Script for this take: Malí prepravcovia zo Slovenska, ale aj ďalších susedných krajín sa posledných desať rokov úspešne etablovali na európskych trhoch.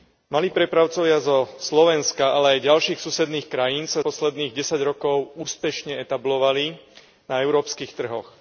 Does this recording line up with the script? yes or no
yes